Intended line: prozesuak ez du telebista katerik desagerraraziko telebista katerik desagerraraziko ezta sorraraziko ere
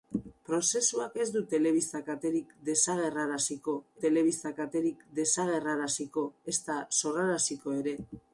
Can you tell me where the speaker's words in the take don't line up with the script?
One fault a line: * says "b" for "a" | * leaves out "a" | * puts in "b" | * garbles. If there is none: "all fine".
all fine